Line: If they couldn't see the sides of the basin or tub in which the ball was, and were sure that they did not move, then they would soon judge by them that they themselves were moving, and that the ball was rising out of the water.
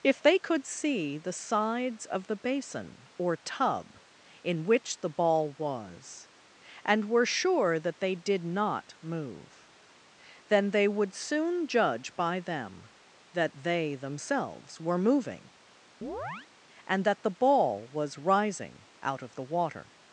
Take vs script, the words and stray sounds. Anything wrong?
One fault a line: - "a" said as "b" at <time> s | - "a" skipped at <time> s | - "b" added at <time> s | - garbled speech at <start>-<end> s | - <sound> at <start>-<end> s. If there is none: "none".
- "couldn't" said as "could" at 0.4 s
- chirp at 16.0-16.5 s